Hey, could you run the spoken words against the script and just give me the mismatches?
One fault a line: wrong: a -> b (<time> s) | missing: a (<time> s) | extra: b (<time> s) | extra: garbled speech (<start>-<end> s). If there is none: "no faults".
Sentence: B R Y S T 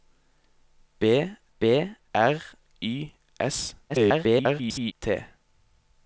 extra: b (1.6 s)
extra: garbled speech (3.9-4.9 s)